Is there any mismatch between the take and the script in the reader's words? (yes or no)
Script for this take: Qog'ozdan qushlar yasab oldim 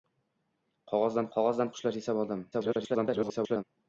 yes